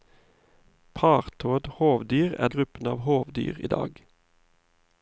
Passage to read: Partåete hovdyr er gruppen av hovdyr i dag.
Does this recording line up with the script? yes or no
yes